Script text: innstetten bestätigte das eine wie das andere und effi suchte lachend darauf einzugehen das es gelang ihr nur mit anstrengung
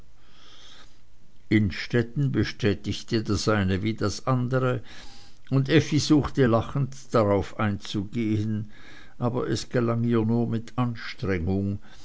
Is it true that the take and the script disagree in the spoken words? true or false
true